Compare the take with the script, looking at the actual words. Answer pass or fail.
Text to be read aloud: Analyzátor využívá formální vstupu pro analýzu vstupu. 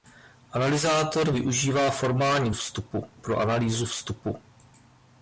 pass